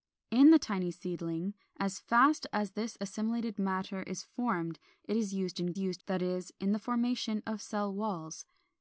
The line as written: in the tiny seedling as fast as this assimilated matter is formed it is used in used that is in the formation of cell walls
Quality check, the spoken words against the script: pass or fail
pass